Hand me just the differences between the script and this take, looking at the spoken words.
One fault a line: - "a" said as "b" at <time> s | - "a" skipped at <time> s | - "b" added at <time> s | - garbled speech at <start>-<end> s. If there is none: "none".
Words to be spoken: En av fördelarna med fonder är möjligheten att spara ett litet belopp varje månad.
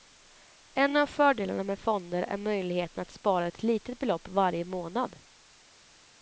none